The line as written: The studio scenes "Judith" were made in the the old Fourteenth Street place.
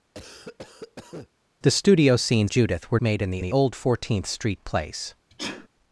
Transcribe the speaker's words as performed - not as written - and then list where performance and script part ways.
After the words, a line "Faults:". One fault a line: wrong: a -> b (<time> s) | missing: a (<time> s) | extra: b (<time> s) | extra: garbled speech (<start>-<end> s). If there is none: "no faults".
The studio scenes "Judith" were made in the the old Fourteenth Street place.
Faults:
no faults